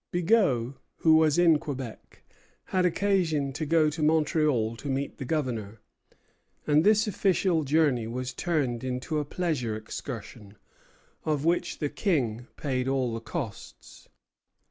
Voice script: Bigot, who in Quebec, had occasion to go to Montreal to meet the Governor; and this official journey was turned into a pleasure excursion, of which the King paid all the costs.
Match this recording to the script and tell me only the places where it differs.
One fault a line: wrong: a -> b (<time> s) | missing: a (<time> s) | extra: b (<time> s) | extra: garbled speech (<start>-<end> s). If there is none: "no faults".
extra: was (1.2 s)